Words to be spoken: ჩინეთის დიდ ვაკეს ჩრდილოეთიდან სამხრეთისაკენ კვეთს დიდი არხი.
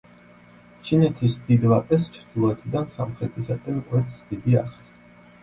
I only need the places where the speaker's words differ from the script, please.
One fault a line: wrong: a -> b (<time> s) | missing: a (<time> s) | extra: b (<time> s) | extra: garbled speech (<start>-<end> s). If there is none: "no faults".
no faults